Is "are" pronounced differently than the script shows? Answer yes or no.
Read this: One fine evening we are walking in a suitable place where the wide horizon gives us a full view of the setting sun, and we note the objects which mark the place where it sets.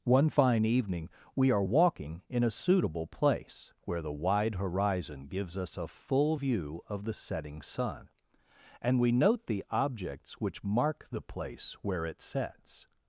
no